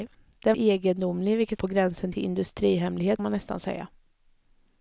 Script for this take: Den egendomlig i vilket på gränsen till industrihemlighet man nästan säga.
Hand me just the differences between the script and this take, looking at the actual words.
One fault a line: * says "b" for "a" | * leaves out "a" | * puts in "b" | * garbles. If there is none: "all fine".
all fine